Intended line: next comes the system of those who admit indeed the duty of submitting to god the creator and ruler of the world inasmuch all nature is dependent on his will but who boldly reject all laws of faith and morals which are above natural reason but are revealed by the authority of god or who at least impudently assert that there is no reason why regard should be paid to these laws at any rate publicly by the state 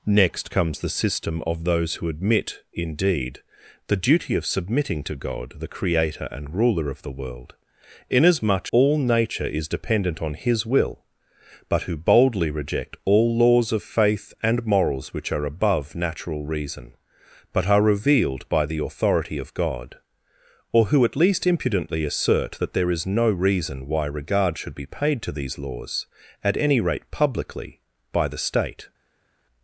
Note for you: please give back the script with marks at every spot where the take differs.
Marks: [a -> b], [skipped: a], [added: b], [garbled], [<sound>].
next comes the system of those who admit indeed the duty of submitting to god the creator and ruler of the world inasmuch all nature is dependent on his will but who boldly reject all laws of faith and morals which are above natural reason but are revealed by the authority of god or who at least impudently assert that there is no reason why regard should be paid to these laws at any rate publicly by the state